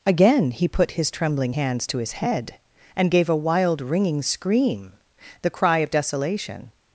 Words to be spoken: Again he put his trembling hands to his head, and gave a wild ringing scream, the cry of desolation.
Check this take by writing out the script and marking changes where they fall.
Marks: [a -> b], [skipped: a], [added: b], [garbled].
Again he put his trembling hands to his head, and gave a wild ringing scream, the cry of desolation.